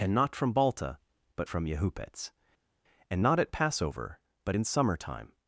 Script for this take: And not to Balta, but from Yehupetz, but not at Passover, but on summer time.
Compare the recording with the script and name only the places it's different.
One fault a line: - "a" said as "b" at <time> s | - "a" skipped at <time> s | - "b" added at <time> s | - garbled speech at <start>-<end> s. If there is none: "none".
- "to" said as "from" at 0.3 s
- "but" said as "and" at 3.1 s
- "on" said as "in" at 4.5 s